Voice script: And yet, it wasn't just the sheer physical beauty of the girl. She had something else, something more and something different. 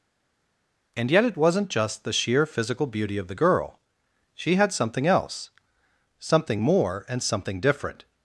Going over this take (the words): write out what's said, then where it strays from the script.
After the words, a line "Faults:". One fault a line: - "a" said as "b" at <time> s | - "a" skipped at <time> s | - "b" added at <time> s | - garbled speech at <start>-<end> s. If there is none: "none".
And yet, it wasn't just the sheer physical beauty of the girl. She had something else, something more and something different.
Faults:
none